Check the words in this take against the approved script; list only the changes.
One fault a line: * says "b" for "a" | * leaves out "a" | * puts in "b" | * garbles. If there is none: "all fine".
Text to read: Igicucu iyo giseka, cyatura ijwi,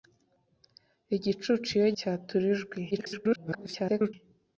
* leaves out "giseka"
* garbles